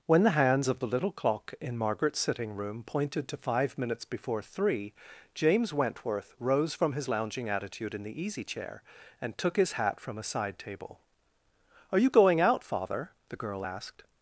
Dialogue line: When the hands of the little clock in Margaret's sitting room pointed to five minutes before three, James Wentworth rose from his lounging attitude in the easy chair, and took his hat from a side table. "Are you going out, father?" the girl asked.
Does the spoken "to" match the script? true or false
true